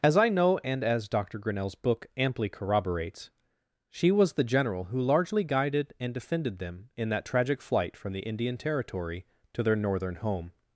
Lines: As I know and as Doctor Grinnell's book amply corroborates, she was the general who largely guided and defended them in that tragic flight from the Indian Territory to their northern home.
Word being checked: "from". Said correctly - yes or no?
yes